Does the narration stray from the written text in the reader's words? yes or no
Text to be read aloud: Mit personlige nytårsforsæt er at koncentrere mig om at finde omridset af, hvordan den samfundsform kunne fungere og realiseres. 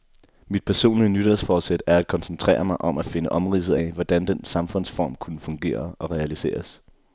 no